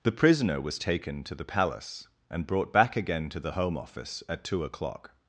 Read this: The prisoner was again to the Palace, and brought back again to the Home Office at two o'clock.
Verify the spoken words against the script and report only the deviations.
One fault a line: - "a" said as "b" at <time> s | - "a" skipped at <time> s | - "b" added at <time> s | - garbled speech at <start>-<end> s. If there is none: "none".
- "again" said as "taken" at 0.8 s